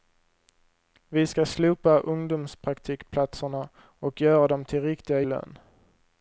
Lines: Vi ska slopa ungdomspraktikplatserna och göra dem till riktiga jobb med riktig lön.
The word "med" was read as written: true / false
false